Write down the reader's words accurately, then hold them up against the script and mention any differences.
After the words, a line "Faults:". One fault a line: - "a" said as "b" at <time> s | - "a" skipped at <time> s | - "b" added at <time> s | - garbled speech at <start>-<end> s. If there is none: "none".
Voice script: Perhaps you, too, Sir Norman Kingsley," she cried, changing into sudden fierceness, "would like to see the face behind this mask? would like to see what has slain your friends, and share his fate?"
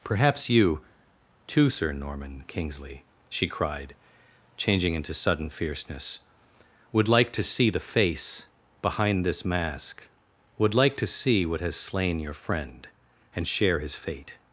Perhaps you, too, Sir Norman Kingsley," she cried, changing into sudden fierceness, "would like to see the face behind this mask? would like to see what has slain your friend, and share his fate?"
Faults:
- "friends" said as "friend" at 12.3 s